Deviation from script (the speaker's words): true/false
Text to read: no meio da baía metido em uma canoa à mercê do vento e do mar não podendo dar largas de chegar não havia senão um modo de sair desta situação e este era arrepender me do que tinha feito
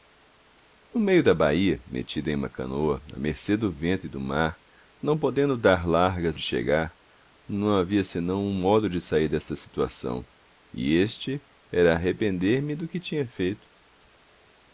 false